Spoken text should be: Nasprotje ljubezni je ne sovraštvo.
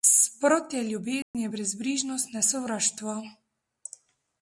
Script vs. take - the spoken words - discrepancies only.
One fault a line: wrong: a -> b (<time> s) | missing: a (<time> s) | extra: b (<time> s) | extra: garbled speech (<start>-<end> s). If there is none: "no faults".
extra: brezbrižnost (1.5 s)